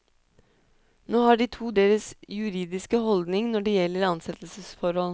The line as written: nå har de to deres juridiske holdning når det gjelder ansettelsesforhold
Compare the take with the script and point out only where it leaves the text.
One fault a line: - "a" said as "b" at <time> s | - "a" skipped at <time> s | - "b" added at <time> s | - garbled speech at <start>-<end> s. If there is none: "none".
none